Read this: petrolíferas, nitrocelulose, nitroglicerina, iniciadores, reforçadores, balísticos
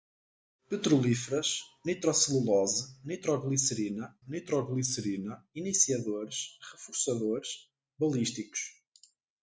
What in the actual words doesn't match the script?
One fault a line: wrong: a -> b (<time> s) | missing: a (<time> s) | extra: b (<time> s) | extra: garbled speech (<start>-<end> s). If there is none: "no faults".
extra: nitroglicerina (4.3 s)